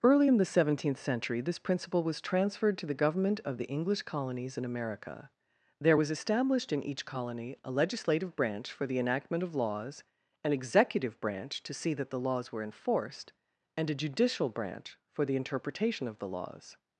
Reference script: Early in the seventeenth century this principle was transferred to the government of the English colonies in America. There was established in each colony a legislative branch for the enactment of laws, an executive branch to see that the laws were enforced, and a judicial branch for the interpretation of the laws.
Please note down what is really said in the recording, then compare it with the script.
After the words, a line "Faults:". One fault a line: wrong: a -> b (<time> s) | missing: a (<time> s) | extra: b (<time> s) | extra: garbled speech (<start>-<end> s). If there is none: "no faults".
Early in the seventeenth century this principle was transferred to the government of the English colonies in America. There was established in each colony a legislative branch for the enactment of laws, an executive branch to see that the laws were enforced, and a judicial branch for the interpretation of the laws.
Faults:
no faults